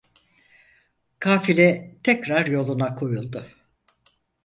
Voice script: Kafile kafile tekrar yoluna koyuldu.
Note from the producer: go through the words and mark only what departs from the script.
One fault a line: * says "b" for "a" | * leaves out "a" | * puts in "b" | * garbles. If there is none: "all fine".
* leaves out "kafile"